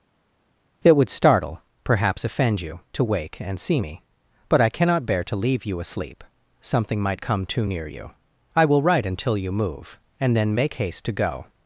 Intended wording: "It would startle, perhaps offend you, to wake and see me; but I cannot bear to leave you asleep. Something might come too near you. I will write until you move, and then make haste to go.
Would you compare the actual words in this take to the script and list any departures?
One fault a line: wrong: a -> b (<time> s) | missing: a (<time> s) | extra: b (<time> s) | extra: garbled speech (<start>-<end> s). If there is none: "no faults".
no faults